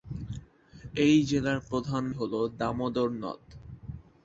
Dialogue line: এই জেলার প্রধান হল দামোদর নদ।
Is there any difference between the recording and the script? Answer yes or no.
no